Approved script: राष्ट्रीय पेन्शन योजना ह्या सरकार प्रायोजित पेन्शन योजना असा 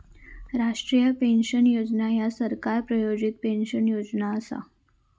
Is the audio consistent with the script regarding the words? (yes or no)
yes